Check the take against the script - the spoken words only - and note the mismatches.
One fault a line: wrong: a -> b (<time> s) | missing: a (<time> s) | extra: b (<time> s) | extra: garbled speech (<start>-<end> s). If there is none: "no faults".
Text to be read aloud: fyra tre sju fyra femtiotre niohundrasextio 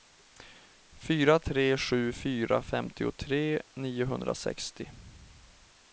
no faults